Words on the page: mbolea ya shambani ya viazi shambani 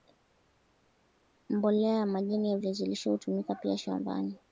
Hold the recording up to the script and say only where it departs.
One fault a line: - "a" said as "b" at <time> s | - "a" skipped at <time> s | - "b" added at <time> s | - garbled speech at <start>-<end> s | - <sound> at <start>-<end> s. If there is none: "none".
- "shambani" said as "majani" at 2.1 s
- "lishe hutumika pia" added at 2.9 s